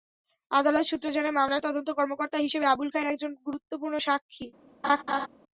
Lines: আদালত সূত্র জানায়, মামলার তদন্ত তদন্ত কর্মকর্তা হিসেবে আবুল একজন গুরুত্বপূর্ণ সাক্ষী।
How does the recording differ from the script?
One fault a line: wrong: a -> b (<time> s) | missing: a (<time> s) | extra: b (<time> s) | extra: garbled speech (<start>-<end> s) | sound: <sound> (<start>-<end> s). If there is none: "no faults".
missing: তদন্ত (1.9 s)
extra: খায়ের (2.9 s)
sound: laugh (4.8-5.3 s)